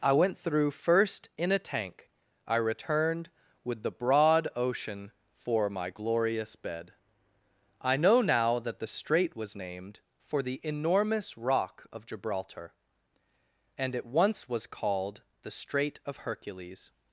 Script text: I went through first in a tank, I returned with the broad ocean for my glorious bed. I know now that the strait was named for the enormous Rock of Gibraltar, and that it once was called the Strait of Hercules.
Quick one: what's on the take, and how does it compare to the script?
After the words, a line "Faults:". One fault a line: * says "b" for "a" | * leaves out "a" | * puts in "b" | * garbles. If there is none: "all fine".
I went through first in a tank, I returned with the broad ocean for my glorious bed. I know now that the strait was named for the enormous Rock of Gibraltar, and it once was called the Strait of Hercules.
Faults:
* leaves out "that"